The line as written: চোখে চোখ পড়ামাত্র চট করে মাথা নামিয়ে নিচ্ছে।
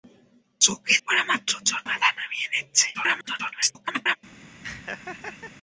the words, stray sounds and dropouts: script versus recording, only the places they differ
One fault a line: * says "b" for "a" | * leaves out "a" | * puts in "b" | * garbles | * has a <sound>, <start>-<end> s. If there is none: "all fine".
* leaves out "চোখ"
* leaves out "করে"
* garbles
* has a laugh, 4.6-5.5 s